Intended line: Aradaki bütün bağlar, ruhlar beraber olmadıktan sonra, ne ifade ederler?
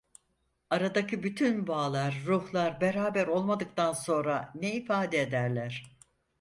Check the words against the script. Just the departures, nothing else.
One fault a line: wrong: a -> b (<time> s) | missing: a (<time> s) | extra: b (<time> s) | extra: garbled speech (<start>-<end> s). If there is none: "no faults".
no faults